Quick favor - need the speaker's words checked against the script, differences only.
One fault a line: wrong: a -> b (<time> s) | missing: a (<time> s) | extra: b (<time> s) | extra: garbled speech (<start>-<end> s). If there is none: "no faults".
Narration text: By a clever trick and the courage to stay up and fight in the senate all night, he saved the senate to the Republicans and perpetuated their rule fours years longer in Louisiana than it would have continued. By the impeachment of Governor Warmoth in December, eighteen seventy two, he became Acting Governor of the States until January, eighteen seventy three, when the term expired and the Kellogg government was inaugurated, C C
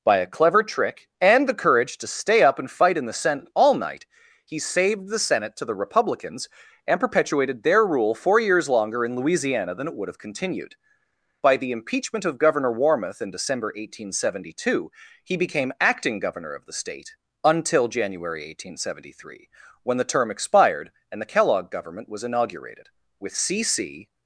wrong: fours -> four (8.2 s)
wrong: States -> State (16.7 s)
extra: with (23.2 s)